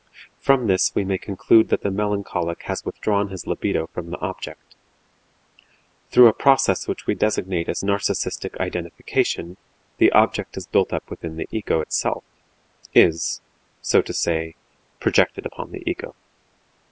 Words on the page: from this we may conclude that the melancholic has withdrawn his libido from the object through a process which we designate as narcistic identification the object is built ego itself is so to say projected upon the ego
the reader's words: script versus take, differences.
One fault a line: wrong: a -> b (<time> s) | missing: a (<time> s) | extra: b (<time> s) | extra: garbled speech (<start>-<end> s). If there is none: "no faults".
extra: up within the (10.9 s)